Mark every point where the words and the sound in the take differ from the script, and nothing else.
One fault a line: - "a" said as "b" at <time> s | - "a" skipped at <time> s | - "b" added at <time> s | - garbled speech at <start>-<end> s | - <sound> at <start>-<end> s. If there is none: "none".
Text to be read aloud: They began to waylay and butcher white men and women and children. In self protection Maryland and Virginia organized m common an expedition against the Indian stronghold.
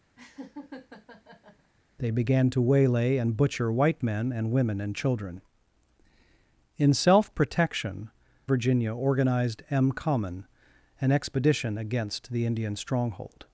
- laugh at 0.2-1.7 s
- "Maryland and" skipped at 8.1 s